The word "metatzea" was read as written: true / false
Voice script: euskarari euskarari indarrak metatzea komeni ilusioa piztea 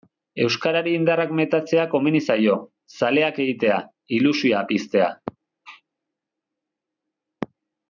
true